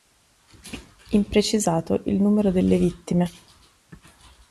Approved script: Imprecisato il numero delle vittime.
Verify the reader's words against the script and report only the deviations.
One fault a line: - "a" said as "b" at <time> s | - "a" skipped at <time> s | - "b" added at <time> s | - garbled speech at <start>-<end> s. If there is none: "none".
none